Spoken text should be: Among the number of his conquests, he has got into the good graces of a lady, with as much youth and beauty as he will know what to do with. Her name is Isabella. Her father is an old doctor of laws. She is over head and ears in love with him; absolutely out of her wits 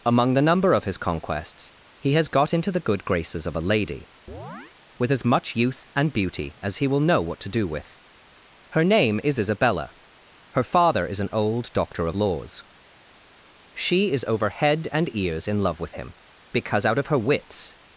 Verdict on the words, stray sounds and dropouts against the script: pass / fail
fail